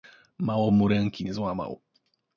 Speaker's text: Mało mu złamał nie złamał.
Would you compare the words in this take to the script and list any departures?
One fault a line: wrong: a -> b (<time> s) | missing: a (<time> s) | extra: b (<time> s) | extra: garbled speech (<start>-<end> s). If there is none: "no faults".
wrong: złamał -> ręki (0.9 s)